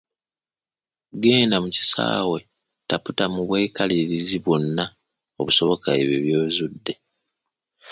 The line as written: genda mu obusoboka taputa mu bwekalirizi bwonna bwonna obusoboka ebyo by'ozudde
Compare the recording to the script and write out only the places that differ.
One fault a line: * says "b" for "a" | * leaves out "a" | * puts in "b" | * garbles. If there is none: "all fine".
* says "kisaawe" for "obusoboka"
* leaves out "bwonna"